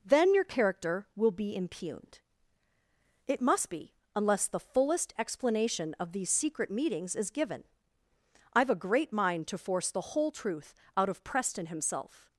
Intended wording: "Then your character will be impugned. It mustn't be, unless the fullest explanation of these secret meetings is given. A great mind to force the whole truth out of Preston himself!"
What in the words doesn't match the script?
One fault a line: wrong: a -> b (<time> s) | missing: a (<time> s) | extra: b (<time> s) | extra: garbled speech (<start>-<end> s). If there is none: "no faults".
wrong: mustn't -> must (3.4 s)
extra: I've (8.5 s)